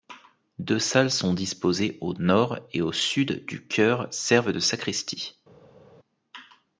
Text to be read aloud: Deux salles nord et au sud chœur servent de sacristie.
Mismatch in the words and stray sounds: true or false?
true